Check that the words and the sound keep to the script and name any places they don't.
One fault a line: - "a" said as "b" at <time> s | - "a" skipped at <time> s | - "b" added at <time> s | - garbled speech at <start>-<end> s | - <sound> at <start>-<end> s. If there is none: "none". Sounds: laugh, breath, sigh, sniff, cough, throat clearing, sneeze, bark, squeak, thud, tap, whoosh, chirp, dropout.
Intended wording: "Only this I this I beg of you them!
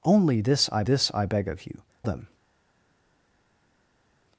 none